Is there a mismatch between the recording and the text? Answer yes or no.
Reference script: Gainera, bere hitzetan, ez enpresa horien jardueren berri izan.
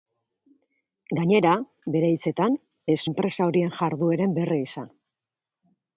no